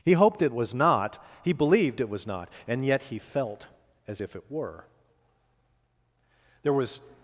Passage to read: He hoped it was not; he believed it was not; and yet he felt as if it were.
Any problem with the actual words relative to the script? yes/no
yes